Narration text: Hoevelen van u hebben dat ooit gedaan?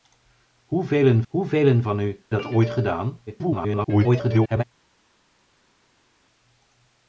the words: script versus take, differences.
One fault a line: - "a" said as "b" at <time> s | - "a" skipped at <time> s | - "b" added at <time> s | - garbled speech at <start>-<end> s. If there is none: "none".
- "hoevelen" added at 1.3 s
- "hebben" skipped at 2.2 s
- garbled speech at 3.3-4.6 s